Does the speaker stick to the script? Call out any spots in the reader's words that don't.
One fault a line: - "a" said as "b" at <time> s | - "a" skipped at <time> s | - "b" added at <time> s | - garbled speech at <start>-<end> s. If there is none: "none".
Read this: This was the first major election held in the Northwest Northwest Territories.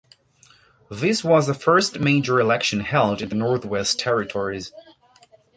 - "Northwest" skipped at 4.0 s